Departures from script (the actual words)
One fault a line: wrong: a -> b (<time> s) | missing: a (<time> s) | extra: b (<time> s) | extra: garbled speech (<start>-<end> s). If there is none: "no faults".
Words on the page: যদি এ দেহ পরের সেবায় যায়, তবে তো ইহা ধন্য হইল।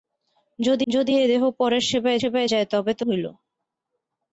extra: যদি (0.9 s)
extra: সেবায় (2.2 s)
missing: ইহা ধন্য (3.0 s)